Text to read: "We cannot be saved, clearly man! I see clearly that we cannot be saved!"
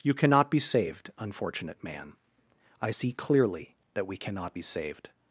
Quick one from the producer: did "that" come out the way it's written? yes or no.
yes